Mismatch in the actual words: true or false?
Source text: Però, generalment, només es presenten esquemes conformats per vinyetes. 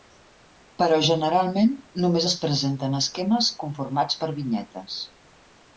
false